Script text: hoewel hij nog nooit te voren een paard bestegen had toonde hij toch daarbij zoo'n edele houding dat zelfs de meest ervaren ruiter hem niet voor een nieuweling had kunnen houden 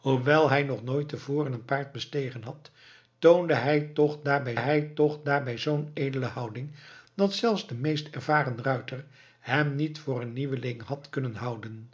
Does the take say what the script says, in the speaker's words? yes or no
no